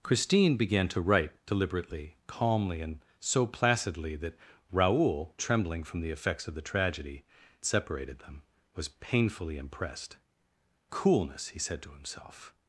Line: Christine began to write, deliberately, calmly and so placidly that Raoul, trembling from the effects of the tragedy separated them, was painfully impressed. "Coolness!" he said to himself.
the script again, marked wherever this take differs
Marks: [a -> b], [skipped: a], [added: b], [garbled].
Christine began to write, deliberately, calmly and so placidly that Raoul, trembling from the effects of the tragedy separated them, was painfully impressed. "Coolness!" he said to himself.